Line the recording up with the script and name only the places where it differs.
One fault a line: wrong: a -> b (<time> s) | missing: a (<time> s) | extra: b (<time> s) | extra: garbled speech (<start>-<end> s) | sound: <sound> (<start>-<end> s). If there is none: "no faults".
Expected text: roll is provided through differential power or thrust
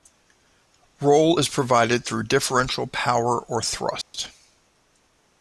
sound: dropout (4.0-4.1 s)